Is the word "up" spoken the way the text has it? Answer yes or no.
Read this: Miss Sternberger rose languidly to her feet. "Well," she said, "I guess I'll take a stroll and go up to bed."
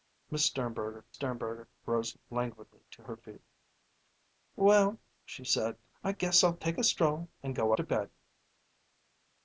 no